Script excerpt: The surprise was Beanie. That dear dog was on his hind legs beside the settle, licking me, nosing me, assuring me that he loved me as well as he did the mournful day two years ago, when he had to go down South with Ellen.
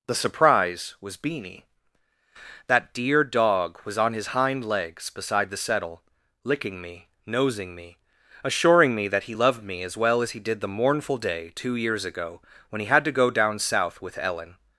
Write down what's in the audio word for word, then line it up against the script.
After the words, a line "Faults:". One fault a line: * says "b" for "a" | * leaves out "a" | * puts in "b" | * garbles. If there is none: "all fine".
The surprise was Beanie. That dear dog was on his hind legs beside the settle, licking me, nosing me, assuring me that he loved me as well as he did the mournful day two years ago, when he had to go down South with Ellen.
Faults:
all fine